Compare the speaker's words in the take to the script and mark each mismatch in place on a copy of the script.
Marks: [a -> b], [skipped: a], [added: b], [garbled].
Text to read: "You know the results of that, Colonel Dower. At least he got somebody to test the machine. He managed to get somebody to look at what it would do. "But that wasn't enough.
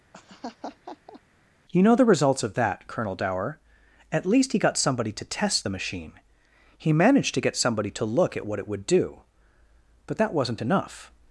"You know the results of that, Colonel Dower. At least he got somebody to test the machine. He managed to get somebody to look at what it would do. "But that wasn't enough.